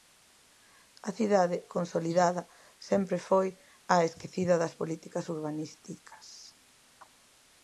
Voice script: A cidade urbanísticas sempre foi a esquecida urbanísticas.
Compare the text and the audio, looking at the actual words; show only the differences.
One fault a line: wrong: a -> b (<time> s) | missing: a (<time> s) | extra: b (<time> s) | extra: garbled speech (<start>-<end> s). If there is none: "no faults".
wrong: urbanísticas -> consolidada (1.8 s)
extra: das políticas (4.6 s)